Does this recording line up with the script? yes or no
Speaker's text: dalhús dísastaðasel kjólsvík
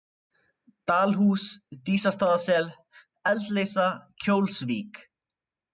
no